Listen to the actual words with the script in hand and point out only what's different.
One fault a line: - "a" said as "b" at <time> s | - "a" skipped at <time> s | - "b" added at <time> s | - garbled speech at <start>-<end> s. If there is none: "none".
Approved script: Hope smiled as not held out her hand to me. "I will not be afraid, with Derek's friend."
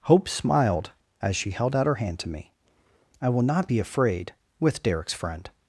- "not" said as "she" at 1.4 s